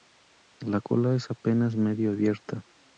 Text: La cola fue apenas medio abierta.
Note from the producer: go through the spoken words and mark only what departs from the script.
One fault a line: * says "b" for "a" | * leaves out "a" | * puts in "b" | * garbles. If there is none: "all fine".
* says "es" for "fue"